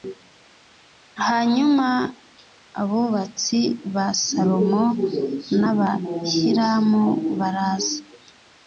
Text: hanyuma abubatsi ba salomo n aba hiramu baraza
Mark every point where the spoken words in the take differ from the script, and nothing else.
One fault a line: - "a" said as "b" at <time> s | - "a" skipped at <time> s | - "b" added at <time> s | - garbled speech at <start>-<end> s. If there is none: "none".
none